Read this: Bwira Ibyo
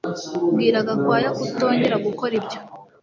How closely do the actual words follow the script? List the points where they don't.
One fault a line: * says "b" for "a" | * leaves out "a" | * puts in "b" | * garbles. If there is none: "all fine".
* puts in "Gakwaya kutongera gukora"